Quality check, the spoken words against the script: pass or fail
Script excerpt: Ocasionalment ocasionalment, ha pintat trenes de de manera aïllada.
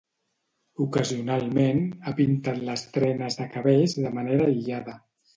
fail